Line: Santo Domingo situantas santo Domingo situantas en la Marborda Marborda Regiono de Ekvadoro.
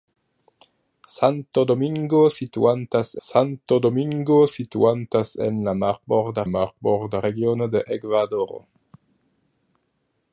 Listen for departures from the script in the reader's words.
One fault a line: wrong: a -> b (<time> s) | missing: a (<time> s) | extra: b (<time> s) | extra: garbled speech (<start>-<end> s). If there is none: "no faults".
no faults